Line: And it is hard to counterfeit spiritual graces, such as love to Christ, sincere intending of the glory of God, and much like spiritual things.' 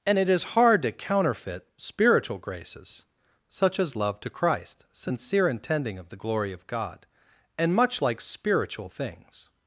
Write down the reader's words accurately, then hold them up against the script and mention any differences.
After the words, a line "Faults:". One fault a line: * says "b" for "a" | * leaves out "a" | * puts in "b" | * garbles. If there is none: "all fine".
And it is hard to counterfeit spiritual graces, such as love to Christ, sincere intending of the glory of God, and much like spiritual things.'
Faults:
all fine